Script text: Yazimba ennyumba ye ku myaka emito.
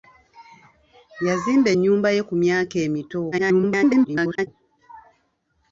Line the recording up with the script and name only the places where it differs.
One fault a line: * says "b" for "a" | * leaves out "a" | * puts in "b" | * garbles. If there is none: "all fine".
* garbles